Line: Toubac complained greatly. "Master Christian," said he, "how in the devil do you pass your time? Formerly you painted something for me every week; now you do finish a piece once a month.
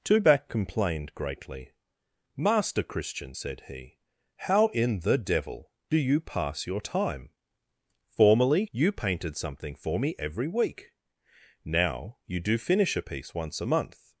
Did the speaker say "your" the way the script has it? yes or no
yes